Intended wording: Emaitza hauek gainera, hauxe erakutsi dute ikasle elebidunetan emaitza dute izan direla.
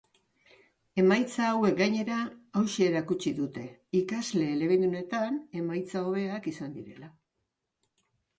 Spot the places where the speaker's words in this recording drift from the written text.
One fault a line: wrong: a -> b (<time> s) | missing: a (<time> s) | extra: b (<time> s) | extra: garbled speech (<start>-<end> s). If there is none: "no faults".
wrong: dute -> hobeak (6.1 s)